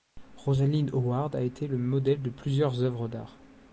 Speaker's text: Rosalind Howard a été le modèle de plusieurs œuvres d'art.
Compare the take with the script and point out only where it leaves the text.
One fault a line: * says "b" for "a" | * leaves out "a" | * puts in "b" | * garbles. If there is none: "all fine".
all fine